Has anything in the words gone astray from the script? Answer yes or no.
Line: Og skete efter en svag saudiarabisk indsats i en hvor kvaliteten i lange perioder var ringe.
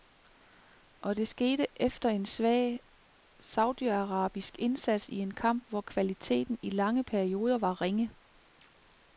yes